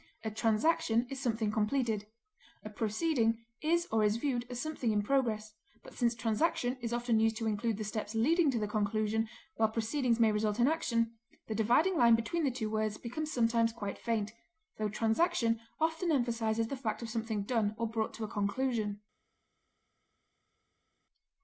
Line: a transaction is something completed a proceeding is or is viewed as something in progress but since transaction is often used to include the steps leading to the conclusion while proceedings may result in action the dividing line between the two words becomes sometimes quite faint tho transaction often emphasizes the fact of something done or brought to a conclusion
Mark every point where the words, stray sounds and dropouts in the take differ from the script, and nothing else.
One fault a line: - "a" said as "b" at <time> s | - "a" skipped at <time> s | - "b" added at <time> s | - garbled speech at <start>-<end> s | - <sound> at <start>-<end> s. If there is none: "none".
none